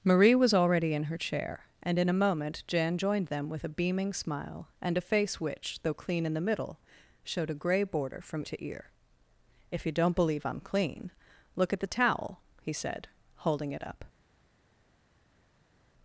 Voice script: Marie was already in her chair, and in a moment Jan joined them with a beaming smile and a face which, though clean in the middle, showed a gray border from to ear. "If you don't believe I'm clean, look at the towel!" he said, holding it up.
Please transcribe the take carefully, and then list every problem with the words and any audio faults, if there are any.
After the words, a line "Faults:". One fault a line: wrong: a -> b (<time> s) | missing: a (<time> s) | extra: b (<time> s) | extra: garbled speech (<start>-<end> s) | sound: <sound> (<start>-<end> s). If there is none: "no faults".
Marie was already in her chair, and in a moment Jan joined them with a beaming smile and a face which, though clean in the middle, showed a gray border from to ear. "If you don't believe I'm clean, look at the towel!" he said, holding it up.
Faults:
no faults